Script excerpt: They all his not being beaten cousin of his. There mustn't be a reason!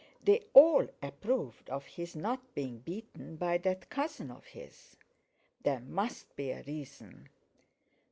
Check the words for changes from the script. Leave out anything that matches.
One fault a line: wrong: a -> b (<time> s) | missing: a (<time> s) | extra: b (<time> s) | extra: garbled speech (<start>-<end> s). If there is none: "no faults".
extra: approved of (1.0 s)
extra: by that (3.4 s)
wrong: mustn't -> must (5.8 s)